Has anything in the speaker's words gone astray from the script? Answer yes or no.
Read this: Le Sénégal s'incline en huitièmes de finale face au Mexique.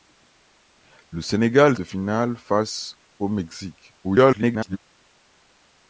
yes